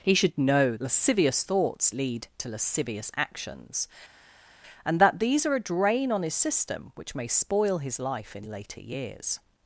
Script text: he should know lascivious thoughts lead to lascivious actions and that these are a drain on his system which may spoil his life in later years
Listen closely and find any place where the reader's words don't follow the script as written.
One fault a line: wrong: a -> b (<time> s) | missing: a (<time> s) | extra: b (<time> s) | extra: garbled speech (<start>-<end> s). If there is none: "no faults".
no faults